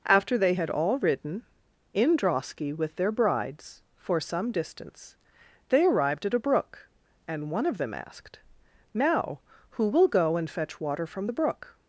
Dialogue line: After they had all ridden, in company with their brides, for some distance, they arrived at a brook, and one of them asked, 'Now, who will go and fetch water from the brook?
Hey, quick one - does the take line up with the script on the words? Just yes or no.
no